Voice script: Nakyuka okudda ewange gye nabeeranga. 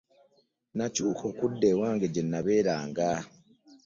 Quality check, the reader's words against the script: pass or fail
pass